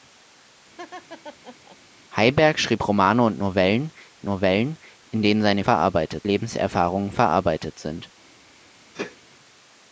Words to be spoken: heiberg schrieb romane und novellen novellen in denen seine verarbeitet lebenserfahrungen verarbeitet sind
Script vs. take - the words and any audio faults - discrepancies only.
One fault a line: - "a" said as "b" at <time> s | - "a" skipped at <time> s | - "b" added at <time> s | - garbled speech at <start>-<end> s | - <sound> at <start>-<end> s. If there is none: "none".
- laugh at 0.8-1.8 s
- sneeze at 8.9-9.2 s